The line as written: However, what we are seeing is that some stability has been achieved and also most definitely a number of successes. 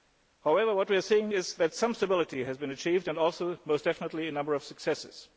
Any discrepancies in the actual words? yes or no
no